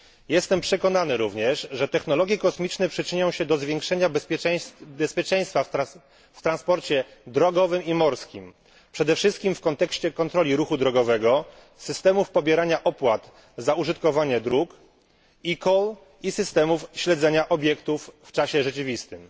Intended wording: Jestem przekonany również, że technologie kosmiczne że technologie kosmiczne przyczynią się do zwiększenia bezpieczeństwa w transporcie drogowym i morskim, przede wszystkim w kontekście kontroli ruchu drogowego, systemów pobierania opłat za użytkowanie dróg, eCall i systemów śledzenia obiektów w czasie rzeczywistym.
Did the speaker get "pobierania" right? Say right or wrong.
right